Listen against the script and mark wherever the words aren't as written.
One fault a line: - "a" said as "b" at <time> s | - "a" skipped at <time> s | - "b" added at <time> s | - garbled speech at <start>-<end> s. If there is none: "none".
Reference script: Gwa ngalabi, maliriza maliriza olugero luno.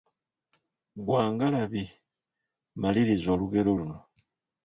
- "maliriza" skipped at 3.3 s